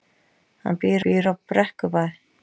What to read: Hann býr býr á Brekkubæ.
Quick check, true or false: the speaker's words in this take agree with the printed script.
true